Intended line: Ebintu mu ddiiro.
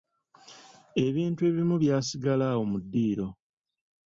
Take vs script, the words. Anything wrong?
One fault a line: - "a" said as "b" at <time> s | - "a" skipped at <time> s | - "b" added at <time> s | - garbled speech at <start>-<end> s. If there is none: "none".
- "ebimu byasigala awo" added at 1.5 s